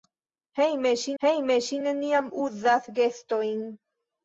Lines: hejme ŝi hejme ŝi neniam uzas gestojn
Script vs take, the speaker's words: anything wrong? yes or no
no